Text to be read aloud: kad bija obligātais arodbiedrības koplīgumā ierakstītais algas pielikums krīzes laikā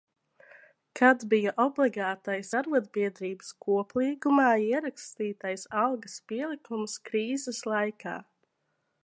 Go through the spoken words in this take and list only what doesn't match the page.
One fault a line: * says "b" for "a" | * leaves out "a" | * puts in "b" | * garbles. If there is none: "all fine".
all fine